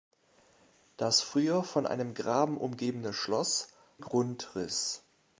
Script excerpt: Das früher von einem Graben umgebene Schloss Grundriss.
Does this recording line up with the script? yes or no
yes